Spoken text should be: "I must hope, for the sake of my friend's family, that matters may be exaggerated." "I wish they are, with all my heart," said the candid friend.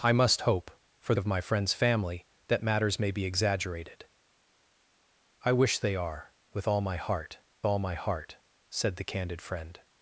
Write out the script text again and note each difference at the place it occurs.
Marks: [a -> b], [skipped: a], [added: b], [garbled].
"I must hope, for [skipped: the sake] of my friend's family, that matters may be exaggerated." "I wish they are, with all my heart," [added: all my heart] said the candid friend.